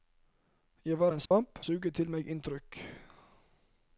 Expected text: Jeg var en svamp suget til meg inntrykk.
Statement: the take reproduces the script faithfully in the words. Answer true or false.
true